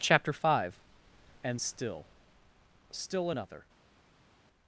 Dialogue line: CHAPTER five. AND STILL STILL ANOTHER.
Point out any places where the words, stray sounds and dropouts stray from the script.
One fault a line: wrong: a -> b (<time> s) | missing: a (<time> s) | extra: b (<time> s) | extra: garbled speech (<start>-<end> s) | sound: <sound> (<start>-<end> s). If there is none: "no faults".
no faults